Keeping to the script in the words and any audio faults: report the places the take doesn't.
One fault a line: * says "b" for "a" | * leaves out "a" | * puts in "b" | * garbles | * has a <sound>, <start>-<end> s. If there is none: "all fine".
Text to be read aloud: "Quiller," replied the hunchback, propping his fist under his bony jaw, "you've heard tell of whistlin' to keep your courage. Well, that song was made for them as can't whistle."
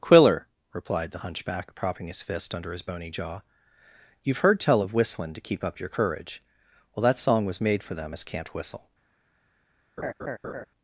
* puts in "up"
* has a laugh, 10.0-10.7 s